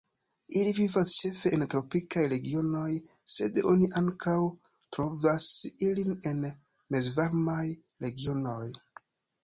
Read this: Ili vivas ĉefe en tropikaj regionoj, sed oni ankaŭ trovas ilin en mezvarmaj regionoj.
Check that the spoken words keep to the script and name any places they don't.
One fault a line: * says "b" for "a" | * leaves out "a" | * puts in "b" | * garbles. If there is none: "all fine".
all fine